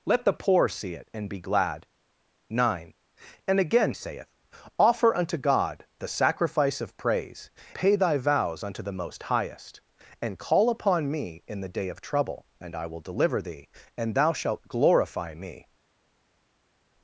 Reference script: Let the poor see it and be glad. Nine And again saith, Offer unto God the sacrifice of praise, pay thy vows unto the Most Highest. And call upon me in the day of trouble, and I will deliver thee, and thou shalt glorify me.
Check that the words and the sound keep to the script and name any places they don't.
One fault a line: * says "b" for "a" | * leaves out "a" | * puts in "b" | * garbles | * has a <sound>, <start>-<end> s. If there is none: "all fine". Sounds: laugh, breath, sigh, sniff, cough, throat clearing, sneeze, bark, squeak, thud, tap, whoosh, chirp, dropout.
all fine